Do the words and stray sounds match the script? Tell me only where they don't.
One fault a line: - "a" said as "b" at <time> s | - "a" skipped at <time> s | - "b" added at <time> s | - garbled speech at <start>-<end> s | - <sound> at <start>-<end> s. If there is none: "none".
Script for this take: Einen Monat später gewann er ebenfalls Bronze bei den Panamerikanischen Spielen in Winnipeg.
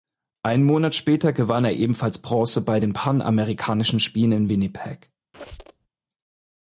- squeak at 5.3-5.9 s